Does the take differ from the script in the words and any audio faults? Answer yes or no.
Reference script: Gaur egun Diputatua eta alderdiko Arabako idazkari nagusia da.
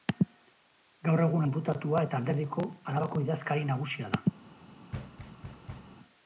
yes